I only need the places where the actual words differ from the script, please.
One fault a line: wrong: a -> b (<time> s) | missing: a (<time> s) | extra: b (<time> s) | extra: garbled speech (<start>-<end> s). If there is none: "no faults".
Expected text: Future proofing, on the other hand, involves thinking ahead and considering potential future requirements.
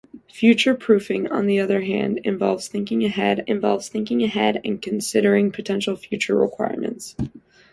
extra: involves thinking ahead (3.5 s)